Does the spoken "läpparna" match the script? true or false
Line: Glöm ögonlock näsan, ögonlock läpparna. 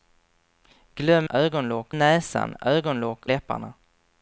true